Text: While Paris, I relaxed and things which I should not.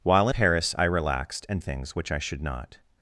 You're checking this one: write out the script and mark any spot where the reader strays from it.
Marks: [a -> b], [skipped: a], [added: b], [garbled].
While Paris, I relaxed and things which I should not.